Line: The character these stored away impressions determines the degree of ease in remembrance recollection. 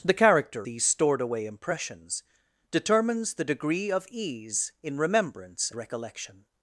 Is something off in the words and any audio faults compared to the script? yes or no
no